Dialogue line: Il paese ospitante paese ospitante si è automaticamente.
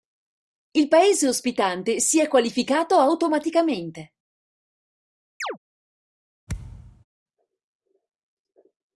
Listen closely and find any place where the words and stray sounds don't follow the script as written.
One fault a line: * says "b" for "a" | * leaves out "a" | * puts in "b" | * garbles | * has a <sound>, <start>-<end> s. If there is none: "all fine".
* leaves out "paese ospitante"
* puts in "qualificato"
* has a chirp, 5.4-5.6 s
* has a thud, 6.5-7.0 s